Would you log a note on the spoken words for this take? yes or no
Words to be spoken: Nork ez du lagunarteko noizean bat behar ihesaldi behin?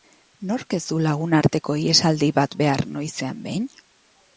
yes